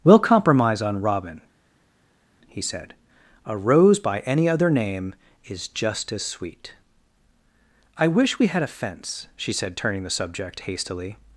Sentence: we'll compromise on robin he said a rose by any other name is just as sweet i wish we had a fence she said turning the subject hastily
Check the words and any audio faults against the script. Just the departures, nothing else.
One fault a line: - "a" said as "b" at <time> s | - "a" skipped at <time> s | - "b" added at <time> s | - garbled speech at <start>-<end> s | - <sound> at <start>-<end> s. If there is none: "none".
none